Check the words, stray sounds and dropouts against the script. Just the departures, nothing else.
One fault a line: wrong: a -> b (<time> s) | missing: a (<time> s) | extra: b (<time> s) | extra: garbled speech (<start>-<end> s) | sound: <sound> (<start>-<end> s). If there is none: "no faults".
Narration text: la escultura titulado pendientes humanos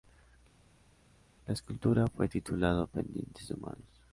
extra: fue (2.0 s)